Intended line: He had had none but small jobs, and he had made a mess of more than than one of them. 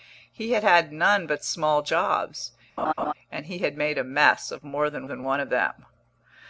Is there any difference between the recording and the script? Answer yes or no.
no